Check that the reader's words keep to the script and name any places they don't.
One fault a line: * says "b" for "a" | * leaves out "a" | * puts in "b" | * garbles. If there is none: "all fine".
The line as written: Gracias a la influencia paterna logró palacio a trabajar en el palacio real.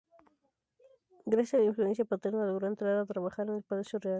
* says "entrar" for "palacio"